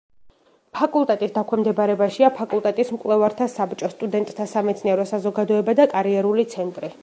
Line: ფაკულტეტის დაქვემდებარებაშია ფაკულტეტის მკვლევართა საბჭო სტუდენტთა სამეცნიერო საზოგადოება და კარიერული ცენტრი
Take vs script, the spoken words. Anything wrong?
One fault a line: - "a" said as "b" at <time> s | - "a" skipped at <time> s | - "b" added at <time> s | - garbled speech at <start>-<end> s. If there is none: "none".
none